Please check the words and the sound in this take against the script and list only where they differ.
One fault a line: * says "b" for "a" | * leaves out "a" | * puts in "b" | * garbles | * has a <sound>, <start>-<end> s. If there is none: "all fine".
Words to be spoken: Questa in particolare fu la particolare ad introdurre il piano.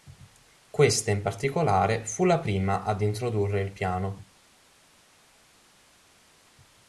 * says "prima" for "particolare"